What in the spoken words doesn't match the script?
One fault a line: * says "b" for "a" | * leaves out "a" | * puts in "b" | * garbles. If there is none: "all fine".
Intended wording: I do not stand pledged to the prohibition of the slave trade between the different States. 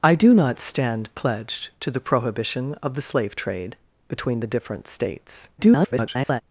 * garbles